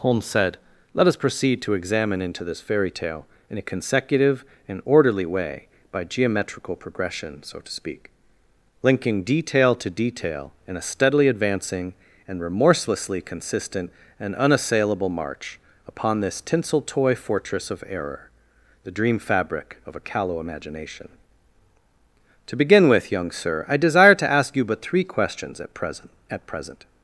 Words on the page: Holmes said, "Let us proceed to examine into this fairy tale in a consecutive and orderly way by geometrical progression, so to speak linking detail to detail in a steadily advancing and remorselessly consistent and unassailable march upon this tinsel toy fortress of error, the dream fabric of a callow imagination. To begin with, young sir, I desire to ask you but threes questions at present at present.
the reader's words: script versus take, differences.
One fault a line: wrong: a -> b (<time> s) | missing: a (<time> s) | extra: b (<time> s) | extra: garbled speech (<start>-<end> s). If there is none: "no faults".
wrong: threes -> three (24.8 s)